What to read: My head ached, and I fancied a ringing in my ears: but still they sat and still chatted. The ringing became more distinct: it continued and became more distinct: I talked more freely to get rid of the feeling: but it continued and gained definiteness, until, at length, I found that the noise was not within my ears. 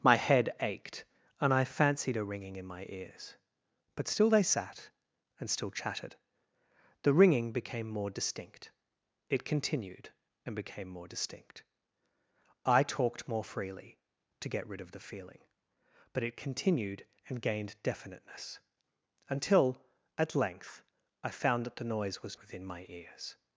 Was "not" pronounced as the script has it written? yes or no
no